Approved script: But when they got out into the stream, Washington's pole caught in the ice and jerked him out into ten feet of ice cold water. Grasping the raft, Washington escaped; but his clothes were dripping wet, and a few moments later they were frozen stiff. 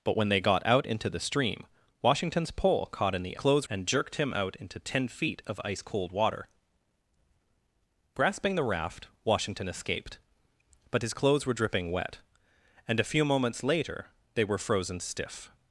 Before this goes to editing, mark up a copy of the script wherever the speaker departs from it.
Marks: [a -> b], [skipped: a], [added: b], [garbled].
But when they got out into the stream, Washington's pole caught in the [ice -> clothes] and jerked him out into ten feet of ice cold water. Grasping the raft, Washington escaped; but his clothes were dripping wet, and a few moments later they were frozen stiff.